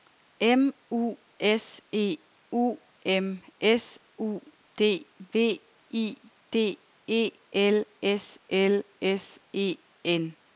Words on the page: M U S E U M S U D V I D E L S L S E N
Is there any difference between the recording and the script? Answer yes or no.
no